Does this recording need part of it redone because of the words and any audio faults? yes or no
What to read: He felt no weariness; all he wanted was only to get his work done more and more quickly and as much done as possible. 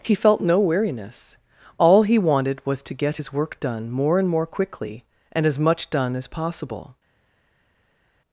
yes